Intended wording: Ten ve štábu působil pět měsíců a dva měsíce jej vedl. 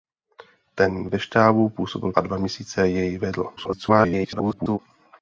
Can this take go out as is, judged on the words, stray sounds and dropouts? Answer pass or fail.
fail